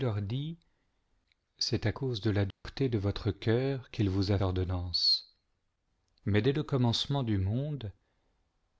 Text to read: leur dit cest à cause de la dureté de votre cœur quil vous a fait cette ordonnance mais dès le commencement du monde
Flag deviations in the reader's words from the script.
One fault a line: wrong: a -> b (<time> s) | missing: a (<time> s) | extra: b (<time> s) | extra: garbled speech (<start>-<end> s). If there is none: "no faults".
missing: fait cette (4.4 s)